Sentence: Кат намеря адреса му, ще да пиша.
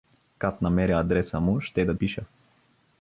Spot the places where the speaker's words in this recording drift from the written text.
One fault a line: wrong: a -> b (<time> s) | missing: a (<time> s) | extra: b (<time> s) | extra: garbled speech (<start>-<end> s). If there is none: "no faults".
no faults